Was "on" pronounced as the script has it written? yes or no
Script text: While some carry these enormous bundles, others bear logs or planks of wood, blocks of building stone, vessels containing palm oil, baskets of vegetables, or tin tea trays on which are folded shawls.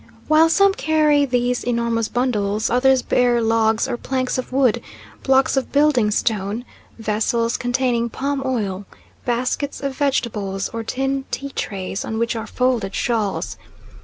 yes